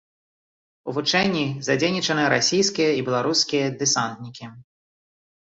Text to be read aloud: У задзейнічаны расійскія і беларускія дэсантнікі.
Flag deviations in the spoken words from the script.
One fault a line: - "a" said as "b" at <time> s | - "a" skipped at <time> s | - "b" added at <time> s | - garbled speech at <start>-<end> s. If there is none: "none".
- "вучэнні" added at 0.9 s